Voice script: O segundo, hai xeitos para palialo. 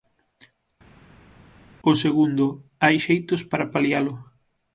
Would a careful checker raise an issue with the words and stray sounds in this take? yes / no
no